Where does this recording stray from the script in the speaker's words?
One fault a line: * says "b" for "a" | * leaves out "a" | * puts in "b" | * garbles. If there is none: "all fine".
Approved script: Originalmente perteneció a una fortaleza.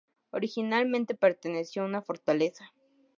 all fine